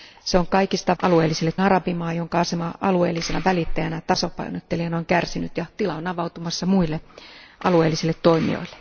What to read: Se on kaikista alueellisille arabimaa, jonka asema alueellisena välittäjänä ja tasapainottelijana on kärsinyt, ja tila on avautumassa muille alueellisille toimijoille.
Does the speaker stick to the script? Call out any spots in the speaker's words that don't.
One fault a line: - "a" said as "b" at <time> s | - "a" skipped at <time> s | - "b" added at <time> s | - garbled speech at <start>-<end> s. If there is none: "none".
none